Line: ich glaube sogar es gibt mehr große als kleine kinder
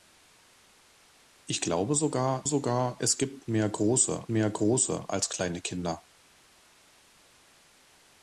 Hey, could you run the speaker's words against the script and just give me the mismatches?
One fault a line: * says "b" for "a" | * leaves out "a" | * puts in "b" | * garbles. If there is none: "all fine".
* puts in "sogar"
* puts in "mehr große"